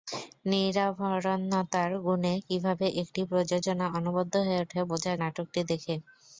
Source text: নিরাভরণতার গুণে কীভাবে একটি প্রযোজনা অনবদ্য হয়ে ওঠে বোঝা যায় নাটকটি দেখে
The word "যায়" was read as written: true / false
false